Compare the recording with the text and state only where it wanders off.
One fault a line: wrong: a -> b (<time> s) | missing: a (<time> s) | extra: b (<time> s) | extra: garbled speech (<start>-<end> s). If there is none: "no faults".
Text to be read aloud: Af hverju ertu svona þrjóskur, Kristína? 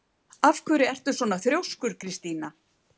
no faults